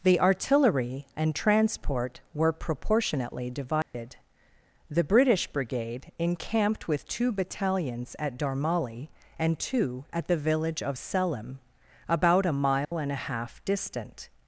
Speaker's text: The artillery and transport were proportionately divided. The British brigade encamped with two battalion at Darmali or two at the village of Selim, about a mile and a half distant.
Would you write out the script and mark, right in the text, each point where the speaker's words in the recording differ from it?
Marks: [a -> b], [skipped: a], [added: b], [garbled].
The artillery and transport were proportionately divided. The British brigade encamped with two [battalion -> battalions] at Darmali [or -> and] two at the village of Selim, about a mile and a half distant.